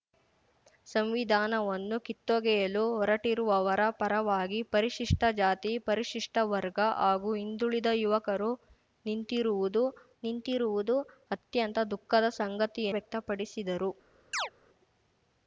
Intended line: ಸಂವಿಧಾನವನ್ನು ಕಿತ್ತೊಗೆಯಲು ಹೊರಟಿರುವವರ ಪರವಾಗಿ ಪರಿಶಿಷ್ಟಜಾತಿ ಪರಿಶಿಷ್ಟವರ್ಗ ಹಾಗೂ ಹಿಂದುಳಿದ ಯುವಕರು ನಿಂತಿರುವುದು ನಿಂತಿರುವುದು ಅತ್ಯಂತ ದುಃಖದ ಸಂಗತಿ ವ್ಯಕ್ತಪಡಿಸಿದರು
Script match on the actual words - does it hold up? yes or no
yes